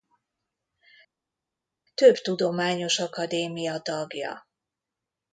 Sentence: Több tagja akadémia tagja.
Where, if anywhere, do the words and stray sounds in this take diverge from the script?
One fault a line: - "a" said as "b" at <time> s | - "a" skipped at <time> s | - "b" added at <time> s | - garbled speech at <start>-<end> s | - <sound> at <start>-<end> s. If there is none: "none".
- "tagja" said as "tudományos" at 2.1 s